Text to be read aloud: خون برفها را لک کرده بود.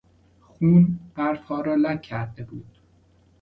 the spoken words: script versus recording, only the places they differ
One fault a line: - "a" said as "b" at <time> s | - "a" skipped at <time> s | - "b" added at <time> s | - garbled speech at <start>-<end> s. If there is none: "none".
none